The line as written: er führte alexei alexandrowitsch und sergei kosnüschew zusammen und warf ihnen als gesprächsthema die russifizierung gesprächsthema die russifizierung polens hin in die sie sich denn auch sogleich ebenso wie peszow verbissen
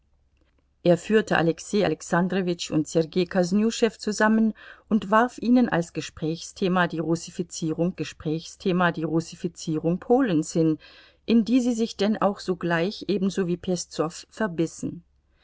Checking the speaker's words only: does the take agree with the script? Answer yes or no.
yes